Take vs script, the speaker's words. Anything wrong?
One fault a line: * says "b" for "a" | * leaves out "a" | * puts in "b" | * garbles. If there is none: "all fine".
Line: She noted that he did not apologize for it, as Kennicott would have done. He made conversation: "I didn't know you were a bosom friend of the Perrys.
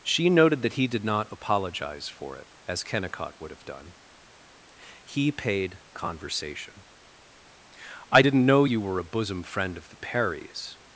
* says "paid" for "made"